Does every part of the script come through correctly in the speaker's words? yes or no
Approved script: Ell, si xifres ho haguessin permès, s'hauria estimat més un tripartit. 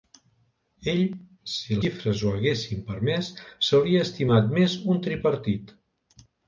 yes